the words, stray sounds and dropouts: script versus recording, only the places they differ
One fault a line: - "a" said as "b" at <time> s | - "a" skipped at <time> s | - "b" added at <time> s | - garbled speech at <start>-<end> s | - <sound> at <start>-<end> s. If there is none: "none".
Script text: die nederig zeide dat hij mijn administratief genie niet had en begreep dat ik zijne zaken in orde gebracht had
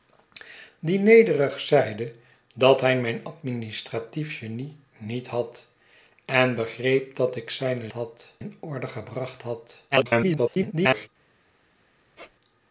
- "zaken" said as "had" at 7.9 s
- garbled speech at 9.9-11.1 s
- squeak at 12.1-12.3 s